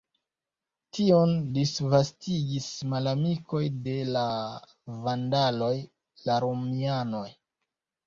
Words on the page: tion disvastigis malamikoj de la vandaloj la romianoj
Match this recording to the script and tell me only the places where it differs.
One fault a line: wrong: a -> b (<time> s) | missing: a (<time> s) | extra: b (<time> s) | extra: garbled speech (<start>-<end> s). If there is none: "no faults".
no faults